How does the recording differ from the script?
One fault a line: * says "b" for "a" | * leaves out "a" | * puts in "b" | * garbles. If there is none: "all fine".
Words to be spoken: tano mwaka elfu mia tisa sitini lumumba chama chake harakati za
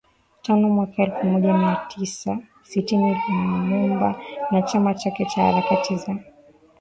* puts in "moja"
* puts in "na"
* puts in "cha"